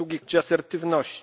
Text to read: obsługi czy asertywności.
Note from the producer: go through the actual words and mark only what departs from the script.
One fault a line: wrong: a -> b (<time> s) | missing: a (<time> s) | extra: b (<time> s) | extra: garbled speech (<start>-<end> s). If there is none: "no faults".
no faults